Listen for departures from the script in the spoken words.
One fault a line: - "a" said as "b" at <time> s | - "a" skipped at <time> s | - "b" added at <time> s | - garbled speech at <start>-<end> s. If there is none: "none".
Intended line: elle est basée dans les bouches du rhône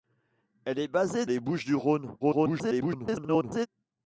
- "dans" skipped at 1.2 s
- garbled speech at 2.2-3.7 s